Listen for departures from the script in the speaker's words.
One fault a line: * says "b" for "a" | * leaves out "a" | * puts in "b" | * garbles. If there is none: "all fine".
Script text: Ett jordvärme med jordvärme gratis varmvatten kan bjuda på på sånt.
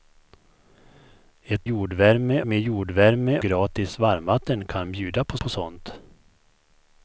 all fine